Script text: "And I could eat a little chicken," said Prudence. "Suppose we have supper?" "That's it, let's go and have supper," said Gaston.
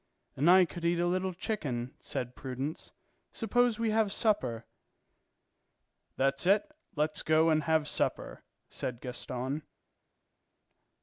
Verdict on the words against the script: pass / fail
pass